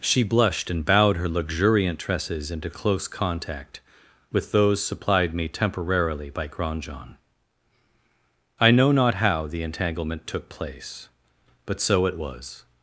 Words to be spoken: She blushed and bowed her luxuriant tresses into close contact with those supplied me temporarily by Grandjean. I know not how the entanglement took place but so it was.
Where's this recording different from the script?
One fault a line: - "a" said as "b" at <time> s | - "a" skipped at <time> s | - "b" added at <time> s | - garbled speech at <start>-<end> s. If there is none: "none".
none